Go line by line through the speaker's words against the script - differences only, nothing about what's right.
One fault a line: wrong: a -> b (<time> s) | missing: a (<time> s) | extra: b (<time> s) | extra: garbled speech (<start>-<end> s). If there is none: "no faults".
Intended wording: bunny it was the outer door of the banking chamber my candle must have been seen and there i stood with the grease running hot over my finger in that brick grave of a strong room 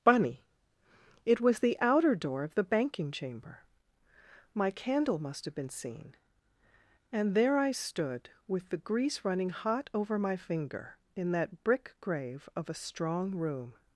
no faults